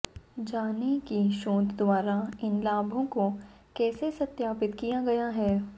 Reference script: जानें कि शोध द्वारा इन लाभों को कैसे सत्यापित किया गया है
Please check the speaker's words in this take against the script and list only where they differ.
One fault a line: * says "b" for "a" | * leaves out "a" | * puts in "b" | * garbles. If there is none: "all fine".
all fine